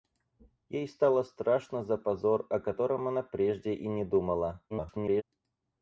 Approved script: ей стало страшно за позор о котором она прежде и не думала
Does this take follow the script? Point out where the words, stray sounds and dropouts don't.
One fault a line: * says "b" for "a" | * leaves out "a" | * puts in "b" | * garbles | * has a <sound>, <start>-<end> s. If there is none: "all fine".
* garbles